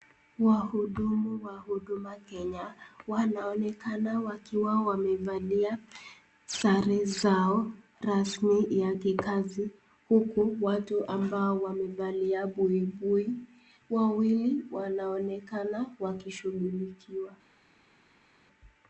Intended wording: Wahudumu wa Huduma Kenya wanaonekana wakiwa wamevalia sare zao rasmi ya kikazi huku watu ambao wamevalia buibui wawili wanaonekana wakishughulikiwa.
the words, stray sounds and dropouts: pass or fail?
pass